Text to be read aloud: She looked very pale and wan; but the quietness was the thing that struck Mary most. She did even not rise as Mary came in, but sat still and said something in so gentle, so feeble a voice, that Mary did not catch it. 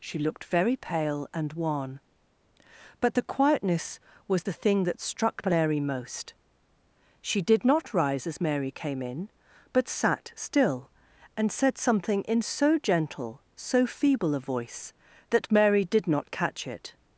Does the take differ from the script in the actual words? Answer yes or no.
yes